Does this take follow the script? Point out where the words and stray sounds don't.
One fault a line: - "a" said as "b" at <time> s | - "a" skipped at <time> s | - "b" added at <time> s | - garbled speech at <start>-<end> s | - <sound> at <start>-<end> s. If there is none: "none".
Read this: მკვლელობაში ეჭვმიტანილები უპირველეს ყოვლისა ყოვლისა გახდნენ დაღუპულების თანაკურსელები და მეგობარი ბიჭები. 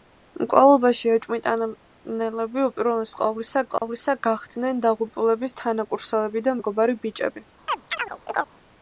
- dropout at 3.8-3.8 s
- chirp at 7.7-8.5 s